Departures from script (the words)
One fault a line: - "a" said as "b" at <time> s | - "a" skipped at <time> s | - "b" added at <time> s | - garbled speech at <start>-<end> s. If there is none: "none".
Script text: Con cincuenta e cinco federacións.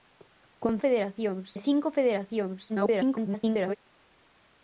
- "cincuenta" said as "federacións" at 0.8 s
- garbled speech at 2.7-3.8 s